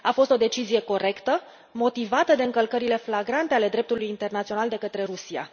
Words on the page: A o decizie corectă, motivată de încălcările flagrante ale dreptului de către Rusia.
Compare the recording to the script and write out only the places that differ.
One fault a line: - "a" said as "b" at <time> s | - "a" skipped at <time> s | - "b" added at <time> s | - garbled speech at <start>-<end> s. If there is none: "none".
- "fost" added at 0.1 s
- "internațional" added at 4.1 s